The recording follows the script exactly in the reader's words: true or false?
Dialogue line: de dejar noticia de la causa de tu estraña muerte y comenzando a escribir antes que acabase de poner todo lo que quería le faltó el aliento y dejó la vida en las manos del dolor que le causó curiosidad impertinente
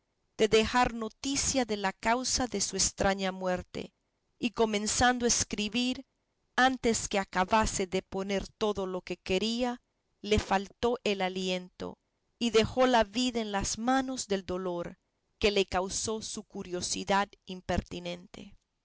false